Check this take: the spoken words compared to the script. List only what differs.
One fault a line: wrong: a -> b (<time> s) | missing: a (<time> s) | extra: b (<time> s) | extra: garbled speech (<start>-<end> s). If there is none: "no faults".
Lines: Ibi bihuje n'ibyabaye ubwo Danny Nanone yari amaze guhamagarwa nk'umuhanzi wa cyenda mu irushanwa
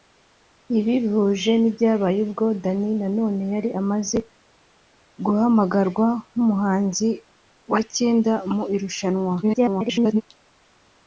extra: garbled speech (9.4-10.2 s)